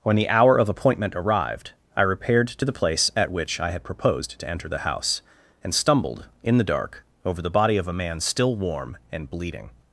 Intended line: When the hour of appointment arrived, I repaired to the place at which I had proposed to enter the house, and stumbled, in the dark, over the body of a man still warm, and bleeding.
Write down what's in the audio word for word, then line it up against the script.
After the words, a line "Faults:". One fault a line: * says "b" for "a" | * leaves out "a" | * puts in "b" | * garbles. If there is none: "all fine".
When the hour of appointment arrived, I repaired to the place at which I had proposed to enter the house, and stumbled, in the dark, over the body of a man still warm, and bleeding.
Faults:
all fine